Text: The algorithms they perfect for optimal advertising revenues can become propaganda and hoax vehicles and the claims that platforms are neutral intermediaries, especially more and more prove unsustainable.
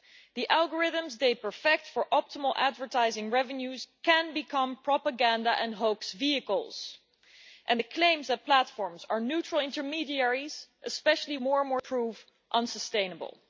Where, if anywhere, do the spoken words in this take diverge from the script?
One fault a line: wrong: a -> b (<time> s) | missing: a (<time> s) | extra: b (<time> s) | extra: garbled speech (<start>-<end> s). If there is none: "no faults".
no faults